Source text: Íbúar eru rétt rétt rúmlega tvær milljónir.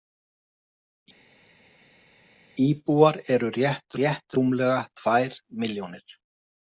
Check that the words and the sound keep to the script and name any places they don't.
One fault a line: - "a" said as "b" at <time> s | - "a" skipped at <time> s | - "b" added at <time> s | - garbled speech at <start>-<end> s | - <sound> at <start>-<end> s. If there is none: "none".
none